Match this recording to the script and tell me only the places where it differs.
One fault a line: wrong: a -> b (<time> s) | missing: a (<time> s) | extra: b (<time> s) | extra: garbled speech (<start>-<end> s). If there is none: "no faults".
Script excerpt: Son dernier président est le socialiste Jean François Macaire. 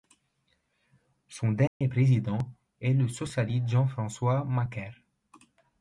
no faults